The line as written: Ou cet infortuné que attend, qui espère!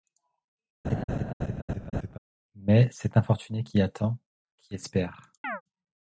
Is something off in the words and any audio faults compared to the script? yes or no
yes